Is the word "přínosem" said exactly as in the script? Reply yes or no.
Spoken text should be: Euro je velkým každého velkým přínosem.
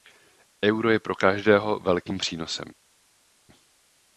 yes